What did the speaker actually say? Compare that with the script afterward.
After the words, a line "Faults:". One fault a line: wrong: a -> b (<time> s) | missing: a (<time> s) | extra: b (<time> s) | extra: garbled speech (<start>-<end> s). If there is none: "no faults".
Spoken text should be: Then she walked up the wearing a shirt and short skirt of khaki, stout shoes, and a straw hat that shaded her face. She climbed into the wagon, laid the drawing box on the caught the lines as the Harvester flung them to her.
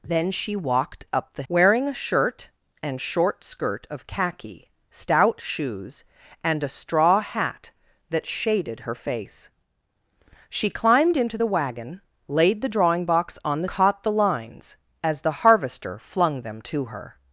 Then she walked up the wearing a shirt and short skirt of khaki, stout shoes, and a straw hat that shaded her face. She climbed into the wagon, laid the drawing box on the caught the lines as the Harvester flung them to her.
Faults:
no faults